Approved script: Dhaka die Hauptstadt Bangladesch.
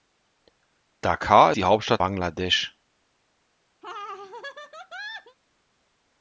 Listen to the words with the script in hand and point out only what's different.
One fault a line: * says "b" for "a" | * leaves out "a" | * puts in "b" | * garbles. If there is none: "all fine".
all fine